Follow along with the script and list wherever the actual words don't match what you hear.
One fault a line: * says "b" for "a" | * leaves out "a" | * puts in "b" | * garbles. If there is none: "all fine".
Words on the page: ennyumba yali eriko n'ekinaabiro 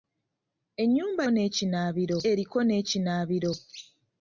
* says "n'ekinaabiro" for "yali"